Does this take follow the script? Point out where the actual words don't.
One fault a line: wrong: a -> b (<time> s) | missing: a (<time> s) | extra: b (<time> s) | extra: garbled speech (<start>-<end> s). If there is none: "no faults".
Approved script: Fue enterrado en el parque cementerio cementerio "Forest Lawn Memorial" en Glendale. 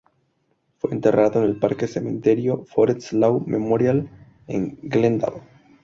missing: cementerio (2.6 s)